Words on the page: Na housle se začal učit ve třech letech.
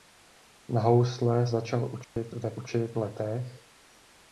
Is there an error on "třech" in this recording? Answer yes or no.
yes